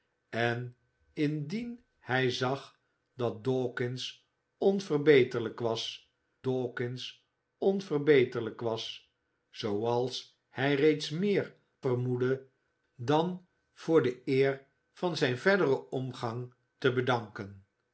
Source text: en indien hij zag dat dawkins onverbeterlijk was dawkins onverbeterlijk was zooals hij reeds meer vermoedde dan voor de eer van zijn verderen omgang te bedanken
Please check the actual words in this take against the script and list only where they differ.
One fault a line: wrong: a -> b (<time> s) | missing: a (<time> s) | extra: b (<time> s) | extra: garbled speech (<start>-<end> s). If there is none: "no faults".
no faults